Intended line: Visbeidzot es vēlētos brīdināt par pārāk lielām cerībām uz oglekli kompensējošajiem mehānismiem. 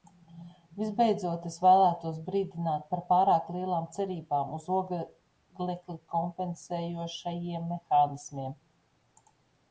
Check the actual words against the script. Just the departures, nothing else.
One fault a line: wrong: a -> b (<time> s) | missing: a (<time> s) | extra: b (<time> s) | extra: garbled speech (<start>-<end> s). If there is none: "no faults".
no faults